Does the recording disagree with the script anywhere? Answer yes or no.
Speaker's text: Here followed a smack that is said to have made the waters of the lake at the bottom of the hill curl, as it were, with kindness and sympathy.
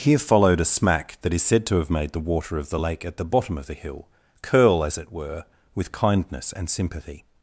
yes